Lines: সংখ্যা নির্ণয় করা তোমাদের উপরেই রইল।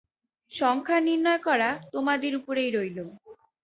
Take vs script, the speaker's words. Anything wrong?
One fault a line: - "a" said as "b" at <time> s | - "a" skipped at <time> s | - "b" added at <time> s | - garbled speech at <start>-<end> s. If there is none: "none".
none